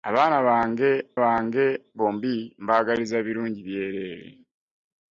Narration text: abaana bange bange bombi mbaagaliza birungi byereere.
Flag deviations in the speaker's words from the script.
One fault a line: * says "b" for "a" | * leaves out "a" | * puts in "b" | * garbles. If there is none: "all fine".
all fine